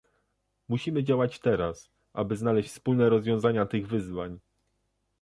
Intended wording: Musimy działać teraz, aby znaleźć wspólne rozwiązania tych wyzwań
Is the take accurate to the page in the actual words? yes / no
yes